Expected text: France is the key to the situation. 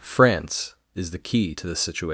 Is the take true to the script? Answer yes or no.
yes